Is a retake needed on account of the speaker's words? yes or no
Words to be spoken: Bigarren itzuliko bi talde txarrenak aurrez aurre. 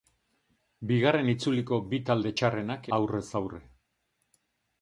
no